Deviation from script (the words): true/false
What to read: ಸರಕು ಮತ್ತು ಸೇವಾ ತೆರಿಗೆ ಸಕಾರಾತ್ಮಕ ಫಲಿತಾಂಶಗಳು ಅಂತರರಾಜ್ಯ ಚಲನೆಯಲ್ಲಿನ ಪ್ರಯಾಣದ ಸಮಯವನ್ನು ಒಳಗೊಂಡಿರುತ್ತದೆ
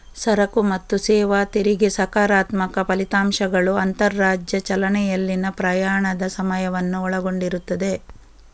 false